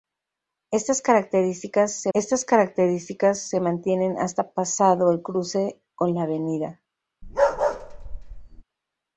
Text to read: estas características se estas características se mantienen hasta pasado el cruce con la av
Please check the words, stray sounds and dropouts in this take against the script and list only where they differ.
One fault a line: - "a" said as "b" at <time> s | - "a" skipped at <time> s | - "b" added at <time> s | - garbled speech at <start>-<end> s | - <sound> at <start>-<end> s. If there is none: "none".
- bark at 7.2-8.6 s